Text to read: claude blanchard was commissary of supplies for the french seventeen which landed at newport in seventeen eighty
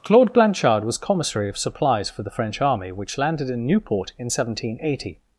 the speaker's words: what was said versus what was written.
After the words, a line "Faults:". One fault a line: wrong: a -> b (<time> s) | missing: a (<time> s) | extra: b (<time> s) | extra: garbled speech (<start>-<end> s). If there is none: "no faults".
claude blanchard was commissary of supplies for the french army which landed in newport in seventeen eighty
Faults:
wrong: seventeen -> army (2.6 s)
wrong: at -> in (3.5 s)